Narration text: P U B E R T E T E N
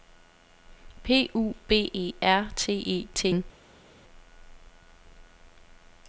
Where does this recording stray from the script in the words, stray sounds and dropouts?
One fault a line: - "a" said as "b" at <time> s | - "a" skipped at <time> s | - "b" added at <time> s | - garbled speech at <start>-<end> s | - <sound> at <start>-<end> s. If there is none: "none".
- "E" skipped at 3.3 s